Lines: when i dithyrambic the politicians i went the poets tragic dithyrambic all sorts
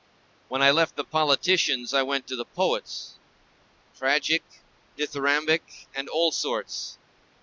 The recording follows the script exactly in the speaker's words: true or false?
false